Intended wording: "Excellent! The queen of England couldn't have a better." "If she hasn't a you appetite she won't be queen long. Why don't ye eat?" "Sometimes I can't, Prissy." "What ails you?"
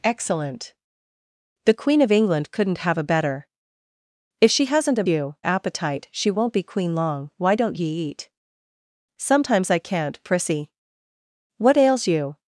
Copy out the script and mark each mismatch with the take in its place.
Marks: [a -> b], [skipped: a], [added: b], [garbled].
"Excellent! The queen of England couldn't have a better." "If she hasn't a you appetite she won't be queen long. Why don't ye eat?" "Sometimes I can't, Prissy." "What ails you?"